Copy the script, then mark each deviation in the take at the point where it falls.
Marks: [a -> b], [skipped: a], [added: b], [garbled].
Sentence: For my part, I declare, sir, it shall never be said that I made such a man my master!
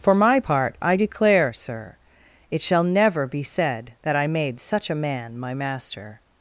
For my part, I declare, sir, it shall never be said that I made such a man my master!